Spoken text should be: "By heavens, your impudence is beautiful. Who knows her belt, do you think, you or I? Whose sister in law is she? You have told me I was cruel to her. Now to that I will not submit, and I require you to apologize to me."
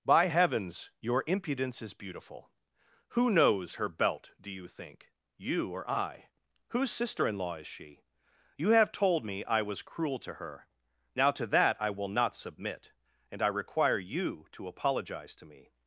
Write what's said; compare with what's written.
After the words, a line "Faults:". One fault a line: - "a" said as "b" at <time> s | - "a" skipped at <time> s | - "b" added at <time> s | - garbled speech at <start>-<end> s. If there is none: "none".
"By heavens, your impudence is beautiful. Who knows her belt, do you think, you or I? Whose sister in law is she? You have told me I was cruel to her. Now to that I will not submit, and I require you to apologize to me."
Faults:
none